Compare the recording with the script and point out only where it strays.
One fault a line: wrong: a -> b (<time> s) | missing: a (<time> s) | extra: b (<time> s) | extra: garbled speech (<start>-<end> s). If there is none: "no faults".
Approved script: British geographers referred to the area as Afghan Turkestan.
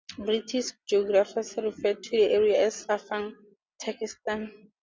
no faults